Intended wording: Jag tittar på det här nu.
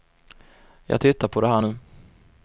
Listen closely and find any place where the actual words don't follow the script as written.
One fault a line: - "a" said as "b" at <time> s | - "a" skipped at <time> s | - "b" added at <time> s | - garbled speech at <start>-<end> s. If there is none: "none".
none